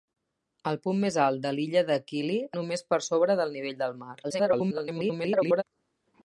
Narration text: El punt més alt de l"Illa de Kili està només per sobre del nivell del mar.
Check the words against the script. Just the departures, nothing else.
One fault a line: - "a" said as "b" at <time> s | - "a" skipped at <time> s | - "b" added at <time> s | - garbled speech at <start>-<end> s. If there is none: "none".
- "està" skipped at 2.4 s
- garbled speech at 4.2-5.6 s